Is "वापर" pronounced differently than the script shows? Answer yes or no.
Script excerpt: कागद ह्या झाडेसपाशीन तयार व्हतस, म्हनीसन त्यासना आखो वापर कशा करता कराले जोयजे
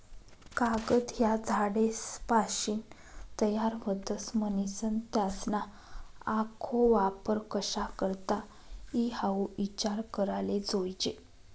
no